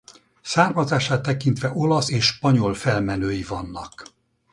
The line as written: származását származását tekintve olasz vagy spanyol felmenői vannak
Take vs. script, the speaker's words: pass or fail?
fail